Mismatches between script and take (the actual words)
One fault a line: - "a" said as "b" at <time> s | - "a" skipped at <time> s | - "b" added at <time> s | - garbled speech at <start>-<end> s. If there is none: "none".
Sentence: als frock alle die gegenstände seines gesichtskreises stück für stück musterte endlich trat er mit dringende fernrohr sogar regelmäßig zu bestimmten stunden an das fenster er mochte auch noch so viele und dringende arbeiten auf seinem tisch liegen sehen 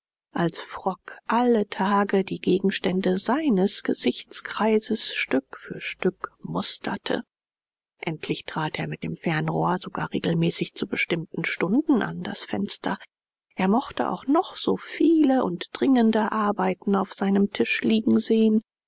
- "tage" added at 1.7 s
- "dringende" said as "dem" at 9.0 s